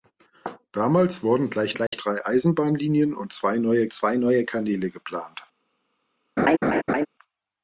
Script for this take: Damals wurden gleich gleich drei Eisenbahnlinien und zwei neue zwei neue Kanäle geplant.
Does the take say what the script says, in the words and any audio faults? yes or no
no